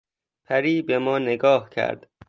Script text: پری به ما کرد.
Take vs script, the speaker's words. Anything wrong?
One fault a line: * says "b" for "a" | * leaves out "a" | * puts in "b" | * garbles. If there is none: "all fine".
* puts in "نگاه"